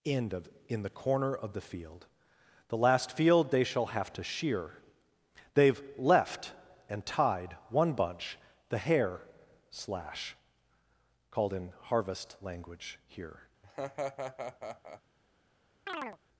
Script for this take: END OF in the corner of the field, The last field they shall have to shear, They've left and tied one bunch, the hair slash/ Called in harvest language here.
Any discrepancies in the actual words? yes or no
no